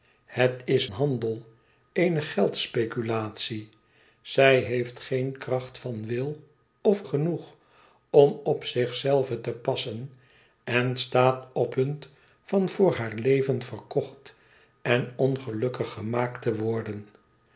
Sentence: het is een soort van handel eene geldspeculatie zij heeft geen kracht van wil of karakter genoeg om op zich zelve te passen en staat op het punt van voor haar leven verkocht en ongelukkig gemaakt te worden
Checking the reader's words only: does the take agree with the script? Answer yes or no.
no